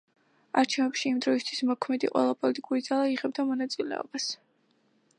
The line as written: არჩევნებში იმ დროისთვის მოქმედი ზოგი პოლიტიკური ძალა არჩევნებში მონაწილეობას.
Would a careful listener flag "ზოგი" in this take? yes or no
yes